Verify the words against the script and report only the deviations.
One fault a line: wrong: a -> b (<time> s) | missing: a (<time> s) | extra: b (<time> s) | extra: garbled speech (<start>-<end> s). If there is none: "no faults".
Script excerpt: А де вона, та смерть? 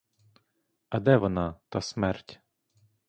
no faults